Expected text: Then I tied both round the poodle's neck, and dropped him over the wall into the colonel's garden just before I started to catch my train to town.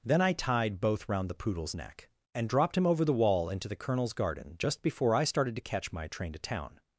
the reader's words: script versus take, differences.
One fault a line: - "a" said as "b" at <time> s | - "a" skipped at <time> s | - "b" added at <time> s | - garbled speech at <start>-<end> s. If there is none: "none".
none